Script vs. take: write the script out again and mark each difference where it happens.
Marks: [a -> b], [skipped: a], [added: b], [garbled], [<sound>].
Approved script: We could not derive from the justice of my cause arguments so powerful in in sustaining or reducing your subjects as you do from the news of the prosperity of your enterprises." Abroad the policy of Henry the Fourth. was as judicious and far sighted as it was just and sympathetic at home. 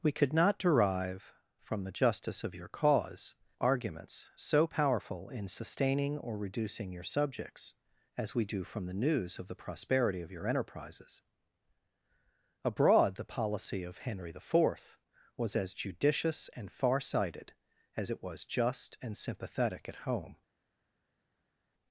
We could not derive from the justice of [my -> your] cause arguments so powerful in [skipped: in] sustaining or reducing your subjects as [you -> we] do from the news of the prosperity of your enterprises." Abroad the policy of Henry the Fourth. was as judicious and far sighted as it was just and sympathetic at home.